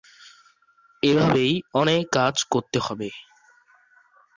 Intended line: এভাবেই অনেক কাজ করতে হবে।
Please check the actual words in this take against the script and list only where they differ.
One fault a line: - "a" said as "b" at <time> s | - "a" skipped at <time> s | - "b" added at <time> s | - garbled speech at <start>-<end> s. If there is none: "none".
none